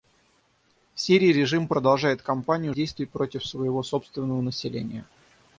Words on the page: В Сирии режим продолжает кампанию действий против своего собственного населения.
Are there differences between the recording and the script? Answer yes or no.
no